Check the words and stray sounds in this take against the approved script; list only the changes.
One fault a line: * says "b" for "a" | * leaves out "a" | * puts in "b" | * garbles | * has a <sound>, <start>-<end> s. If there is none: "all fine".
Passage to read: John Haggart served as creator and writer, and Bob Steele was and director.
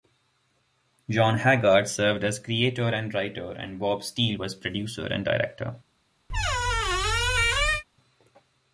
* puts in "producer"
* has a squeak, 6.3-7.8 s